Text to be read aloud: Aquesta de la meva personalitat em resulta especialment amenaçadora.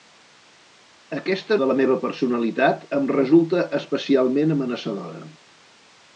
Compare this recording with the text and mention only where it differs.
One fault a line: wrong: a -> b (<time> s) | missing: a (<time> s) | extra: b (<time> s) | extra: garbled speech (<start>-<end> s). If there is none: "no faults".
no faults